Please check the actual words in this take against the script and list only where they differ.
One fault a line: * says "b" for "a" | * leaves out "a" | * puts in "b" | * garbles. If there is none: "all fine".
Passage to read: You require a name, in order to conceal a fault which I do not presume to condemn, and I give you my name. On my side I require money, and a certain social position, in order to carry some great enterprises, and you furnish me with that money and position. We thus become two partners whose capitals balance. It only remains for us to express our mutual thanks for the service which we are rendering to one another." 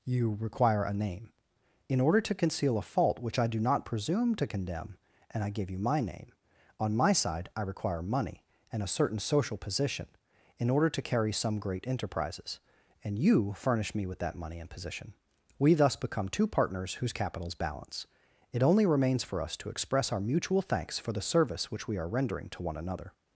all fine